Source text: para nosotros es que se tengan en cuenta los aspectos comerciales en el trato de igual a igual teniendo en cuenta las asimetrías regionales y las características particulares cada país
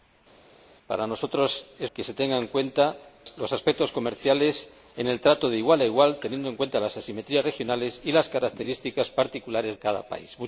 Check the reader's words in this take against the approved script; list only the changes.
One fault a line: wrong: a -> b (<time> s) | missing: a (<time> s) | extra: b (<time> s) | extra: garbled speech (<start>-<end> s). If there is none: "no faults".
no faults